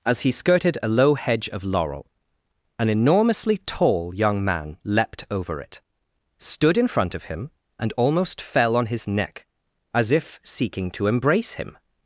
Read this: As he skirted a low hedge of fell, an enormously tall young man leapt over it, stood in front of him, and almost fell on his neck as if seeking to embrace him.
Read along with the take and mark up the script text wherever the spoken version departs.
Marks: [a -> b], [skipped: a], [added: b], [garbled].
As he skirted a low hedge of [fell, -> laurel] an enormously tall young man leapt over it, stood in front of him, and almost fell on his neck as if seeking to embrace him.